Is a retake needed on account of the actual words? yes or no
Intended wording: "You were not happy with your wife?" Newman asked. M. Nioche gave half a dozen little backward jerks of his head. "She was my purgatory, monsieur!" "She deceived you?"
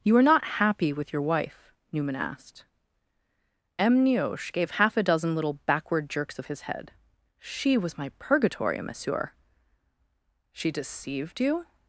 yes